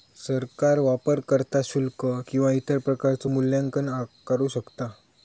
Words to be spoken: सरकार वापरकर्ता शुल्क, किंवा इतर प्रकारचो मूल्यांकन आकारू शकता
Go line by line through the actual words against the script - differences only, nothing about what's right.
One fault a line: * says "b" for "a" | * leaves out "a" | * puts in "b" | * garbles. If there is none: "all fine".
all fine